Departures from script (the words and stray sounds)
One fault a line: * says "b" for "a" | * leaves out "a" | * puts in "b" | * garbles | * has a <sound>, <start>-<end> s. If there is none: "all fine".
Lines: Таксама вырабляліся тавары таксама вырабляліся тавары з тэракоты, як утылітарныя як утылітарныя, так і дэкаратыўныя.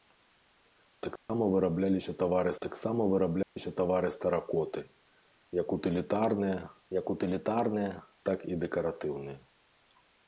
* has a dropout, 1.2-1.3 s
* has a dropout, 3.4-3.6 s